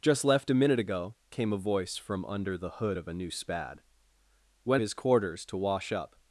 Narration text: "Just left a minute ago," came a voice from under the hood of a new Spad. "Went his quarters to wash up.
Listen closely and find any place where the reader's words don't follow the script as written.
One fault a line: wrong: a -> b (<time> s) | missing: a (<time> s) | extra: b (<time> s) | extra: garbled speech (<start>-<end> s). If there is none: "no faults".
no faults